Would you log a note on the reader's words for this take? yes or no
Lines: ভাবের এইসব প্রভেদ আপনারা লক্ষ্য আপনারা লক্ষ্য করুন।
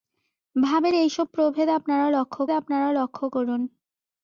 no